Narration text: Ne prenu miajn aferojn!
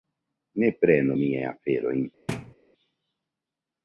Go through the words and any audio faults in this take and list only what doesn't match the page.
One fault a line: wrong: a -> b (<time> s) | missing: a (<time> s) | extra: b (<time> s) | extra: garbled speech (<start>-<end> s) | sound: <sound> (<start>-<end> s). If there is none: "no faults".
sound: thud (2.3-2.5 s)